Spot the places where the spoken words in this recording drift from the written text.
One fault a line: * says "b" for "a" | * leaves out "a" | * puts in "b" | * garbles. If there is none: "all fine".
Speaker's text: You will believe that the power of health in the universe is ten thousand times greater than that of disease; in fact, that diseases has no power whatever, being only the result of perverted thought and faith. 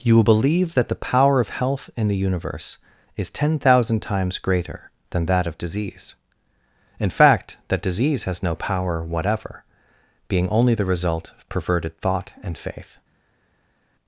* says "disease" for "diseases"